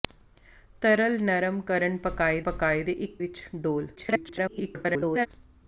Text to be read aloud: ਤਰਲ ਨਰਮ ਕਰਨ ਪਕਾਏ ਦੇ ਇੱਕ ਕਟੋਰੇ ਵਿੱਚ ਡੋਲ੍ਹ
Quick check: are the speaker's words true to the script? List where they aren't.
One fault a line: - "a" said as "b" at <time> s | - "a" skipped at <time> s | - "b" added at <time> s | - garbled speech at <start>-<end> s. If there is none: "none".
- "ਪਕਾਏ" added at 2.4 s
- "ਕਟੋਰੇ" skipped at 3.2 s
- garbled speech at 4.0-5.3 s